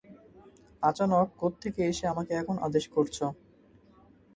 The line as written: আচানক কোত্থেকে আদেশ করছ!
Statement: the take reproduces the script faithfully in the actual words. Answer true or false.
false